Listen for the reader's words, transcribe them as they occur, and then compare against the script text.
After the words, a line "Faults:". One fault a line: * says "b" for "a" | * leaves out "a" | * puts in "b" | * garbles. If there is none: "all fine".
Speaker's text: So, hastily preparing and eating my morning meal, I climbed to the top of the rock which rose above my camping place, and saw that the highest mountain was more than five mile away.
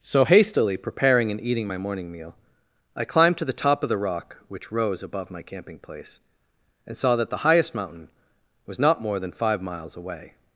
So, hastily preparing and eating my morning meal, I climbed to the top of the rock which rose above my camping place, and saw that the highest mountain was not more than five miles away.
Faults:
* puts in "not"
* says "miles" for "mile"